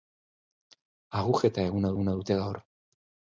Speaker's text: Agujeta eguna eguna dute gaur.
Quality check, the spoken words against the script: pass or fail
pass